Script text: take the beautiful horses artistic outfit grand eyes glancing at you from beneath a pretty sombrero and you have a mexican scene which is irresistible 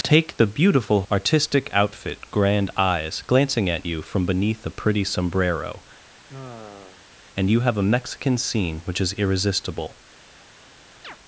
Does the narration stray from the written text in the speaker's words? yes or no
yes